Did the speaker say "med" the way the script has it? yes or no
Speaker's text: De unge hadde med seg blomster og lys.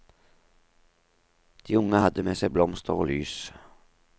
yes